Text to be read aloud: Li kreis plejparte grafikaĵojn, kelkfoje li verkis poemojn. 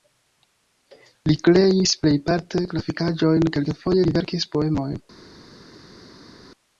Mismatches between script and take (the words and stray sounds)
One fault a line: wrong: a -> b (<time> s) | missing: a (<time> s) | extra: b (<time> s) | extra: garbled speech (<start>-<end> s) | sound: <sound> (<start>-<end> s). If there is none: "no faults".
no faults